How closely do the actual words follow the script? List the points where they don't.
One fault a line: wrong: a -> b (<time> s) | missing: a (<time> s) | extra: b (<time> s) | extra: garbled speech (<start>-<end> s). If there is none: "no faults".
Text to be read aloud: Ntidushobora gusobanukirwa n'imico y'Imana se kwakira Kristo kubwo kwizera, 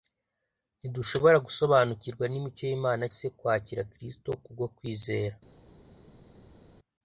no faults